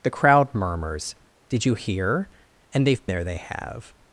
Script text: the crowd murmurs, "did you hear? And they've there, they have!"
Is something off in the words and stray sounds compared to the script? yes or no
no